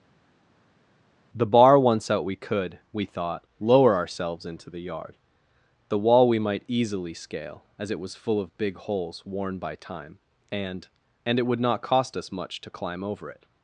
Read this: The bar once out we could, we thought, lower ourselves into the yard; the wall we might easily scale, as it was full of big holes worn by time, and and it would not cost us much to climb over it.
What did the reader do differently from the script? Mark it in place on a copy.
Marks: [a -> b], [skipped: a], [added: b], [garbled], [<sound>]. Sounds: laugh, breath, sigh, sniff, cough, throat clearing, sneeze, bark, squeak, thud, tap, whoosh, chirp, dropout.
The bar once out we could, we thought, lower ourselves into the yard; the wall we might easily scale, as it was full of big holes worn by time, and and it would not cost us much to climb over it.